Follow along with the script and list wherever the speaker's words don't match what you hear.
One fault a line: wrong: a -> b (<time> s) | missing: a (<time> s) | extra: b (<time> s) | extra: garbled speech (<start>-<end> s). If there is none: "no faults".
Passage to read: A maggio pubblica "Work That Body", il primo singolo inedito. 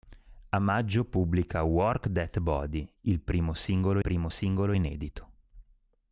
extra: primo singolo (4.0 s)